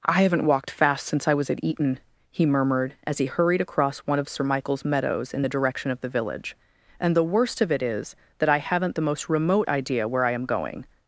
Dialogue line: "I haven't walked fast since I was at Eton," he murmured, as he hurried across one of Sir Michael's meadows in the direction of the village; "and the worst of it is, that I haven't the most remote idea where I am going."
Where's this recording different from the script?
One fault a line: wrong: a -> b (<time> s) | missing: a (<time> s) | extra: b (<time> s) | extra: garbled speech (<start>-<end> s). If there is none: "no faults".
no faults